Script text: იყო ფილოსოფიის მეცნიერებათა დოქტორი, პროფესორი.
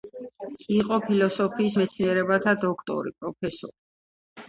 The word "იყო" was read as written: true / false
true